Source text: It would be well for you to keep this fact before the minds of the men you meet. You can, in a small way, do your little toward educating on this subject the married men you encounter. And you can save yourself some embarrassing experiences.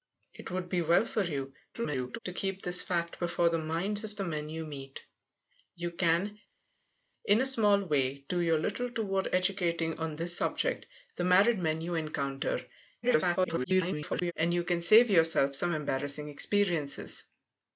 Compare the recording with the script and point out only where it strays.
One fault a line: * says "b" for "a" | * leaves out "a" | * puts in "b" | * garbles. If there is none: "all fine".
* garbles
* garbles